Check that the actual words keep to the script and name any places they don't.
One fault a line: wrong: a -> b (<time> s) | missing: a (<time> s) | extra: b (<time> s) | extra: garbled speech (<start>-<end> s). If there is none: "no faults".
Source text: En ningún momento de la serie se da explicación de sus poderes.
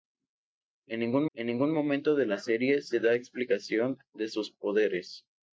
extra: en ningún (1.3 s)